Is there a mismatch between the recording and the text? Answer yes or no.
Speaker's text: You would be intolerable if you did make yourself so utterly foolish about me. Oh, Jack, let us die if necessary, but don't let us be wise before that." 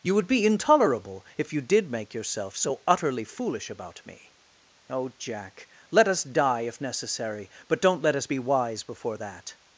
no